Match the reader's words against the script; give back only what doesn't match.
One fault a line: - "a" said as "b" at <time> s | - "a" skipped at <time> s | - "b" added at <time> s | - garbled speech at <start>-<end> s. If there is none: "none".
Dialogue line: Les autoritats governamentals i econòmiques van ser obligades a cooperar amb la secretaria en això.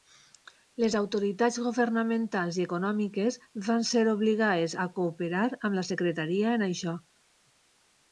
none